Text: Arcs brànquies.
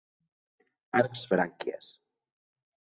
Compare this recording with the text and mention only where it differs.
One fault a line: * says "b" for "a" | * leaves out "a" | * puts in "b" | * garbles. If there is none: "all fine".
all fine